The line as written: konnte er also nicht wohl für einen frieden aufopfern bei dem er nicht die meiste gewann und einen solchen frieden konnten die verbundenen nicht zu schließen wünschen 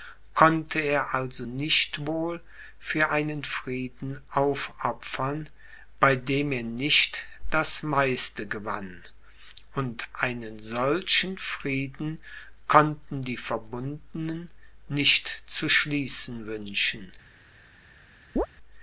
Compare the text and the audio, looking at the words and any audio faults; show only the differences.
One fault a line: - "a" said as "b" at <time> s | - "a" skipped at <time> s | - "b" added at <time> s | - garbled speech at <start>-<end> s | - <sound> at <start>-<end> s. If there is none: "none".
- "die" said as "das" at 7.5 s
- chirp at 18.4-18.5 s